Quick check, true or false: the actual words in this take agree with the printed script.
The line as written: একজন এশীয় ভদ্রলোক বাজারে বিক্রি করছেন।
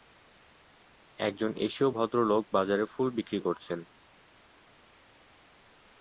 false